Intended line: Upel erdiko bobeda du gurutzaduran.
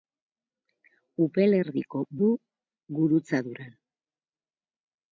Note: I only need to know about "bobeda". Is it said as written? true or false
false